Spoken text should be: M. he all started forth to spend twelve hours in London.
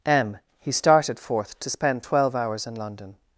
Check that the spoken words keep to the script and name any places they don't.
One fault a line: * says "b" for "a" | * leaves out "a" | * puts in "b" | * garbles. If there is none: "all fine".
* leaves out "all"